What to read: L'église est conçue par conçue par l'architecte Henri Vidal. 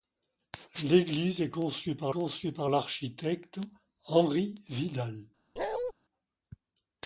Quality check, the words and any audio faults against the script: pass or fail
fail